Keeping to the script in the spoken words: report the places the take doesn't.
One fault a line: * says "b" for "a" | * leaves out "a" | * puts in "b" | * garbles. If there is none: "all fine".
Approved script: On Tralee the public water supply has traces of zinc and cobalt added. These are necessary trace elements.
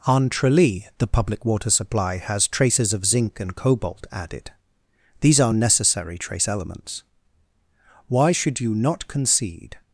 * puts in "Why should you not concede"